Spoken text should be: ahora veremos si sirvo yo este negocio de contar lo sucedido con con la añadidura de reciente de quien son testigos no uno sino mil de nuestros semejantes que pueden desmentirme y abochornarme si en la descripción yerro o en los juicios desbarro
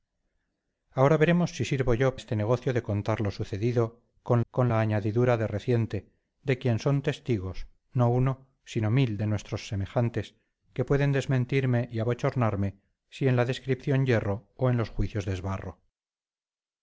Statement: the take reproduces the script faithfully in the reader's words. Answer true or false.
true